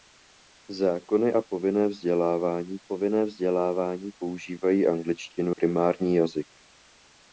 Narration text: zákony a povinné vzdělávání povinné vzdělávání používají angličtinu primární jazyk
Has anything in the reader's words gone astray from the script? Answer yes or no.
no